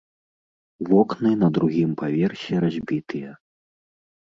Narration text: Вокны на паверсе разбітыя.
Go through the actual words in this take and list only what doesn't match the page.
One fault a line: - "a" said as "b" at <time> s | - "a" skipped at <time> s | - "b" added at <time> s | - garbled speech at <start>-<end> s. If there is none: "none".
- "другім" added at 1.6 s